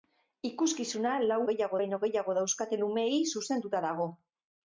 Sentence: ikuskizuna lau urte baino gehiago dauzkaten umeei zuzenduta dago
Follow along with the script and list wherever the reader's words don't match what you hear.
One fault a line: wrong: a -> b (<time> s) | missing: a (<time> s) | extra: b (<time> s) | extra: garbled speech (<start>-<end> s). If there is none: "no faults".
wrong: urte -> gehiago (1.5 s)